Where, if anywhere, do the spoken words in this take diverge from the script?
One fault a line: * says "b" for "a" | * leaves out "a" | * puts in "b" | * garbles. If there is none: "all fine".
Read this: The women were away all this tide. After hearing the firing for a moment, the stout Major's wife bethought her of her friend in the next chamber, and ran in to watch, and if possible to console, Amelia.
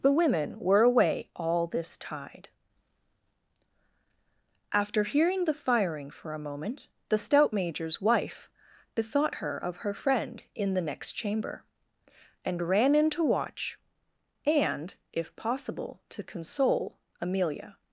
all fine